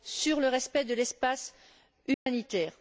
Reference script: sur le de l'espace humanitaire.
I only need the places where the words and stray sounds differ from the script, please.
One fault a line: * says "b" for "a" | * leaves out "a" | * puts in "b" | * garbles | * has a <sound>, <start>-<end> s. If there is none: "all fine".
* puts in "respect"
* has a dropout, 2.1-2.3 s